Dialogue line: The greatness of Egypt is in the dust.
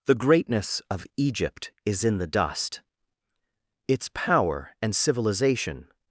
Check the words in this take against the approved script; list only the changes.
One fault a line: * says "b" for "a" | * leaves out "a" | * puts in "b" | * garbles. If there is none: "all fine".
* puts in "Its power and civilization"